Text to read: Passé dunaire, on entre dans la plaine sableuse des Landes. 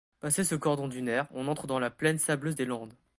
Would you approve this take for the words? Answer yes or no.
no